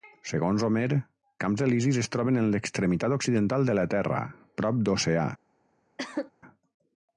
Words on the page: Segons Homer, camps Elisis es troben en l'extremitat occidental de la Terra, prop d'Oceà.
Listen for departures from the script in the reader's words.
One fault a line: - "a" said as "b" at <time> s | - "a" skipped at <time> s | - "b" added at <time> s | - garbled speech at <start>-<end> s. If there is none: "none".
none